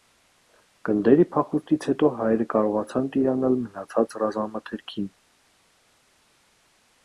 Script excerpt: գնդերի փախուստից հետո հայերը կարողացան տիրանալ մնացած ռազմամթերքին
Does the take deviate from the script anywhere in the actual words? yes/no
no